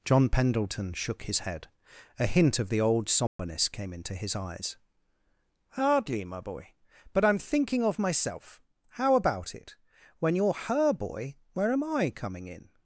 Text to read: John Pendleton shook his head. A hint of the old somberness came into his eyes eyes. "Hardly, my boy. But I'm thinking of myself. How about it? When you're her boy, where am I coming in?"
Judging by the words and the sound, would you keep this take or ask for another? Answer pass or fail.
fail